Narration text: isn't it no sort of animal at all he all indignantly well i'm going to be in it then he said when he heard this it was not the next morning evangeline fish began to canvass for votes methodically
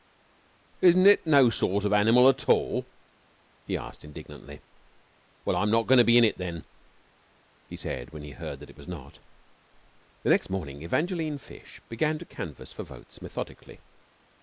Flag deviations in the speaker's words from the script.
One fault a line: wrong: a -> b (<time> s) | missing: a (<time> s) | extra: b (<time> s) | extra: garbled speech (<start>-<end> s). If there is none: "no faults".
wrong: all -> asked (3.8 s)
extra: not (5.7 s)
wrong: this -> that (8.6 s)